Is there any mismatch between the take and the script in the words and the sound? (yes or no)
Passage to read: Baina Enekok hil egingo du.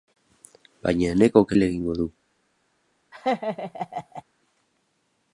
yes